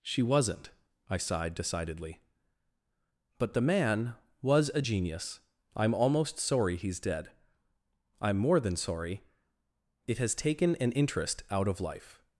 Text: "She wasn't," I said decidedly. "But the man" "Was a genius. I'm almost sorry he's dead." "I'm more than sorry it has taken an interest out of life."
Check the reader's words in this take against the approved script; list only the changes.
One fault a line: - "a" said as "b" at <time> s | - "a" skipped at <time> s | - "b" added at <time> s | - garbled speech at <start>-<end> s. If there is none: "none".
- "said" said as "sighed" at 1.2 s